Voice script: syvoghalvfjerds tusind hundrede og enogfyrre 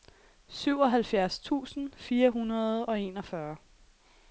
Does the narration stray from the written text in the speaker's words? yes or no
yes